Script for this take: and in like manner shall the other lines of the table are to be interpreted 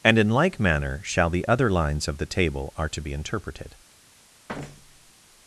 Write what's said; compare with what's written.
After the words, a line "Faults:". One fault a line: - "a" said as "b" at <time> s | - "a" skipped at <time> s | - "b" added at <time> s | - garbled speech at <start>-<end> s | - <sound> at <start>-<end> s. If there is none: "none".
and in like manner shall the other lines of the table are to be interpreted
Faults:
- thud at 4.5-5.1 s